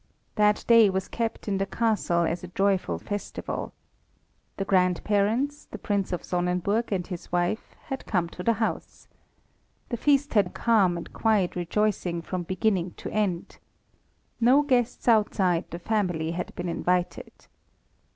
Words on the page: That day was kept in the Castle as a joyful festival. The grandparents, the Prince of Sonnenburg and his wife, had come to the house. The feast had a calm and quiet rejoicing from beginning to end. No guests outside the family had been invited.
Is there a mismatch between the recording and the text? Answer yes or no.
no